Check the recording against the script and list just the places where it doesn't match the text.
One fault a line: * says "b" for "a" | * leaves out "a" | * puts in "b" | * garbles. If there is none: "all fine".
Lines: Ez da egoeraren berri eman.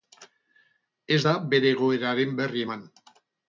* puts in "bere"